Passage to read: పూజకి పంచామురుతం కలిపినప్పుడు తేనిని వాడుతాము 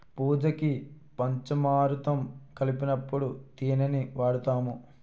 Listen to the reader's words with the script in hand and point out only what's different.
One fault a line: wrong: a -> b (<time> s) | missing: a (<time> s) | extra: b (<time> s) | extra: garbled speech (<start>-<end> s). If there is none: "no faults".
no faults